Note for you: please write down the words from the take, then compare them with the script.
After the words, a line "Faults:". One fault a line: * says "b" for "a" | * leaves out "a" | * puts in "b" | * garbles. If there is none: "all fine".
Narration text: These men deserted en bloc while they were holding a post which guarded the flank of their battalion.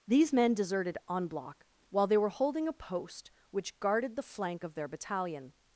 These men deserted en bloc while they were holding a post which guarded the flank of their battalion.
Faults:
all fine